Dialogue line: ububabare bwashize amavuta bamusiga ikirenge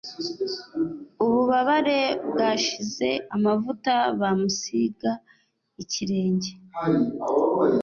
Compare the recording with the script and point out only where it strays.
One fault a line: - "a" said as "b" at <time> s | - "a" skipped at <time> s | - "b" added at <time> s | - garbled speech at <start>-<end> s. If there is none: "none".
none